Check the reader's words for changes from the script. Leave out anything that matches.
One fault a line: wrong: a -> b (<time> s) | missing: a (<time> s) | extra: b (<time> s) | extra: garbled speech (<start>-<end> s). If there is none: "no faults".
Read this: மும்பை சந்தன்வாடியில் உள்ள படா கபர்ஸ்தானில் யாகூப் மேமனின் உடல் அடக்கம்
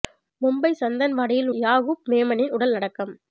missing: உள்ள படா கபர்ஸ்தானில் (1.5 s)